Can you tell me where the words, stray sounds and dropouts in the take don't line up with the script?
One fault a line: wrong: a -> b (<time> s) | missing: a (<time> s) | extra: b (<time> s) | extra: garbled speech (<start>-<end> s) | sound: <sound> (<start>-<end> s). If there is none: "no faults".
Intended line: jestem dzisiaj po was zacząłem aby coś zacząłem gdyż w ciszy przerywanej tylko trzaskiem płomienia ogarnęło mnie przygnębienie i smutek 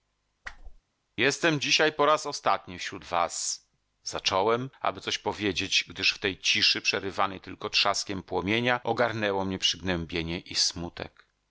sound: whoosh (0.4-0.8 s)
extra: raz ostatni wśród (2.1 s)
wrong: zacząłem -> powiedzieć (5.2 s)
extra: tej (6.2 s)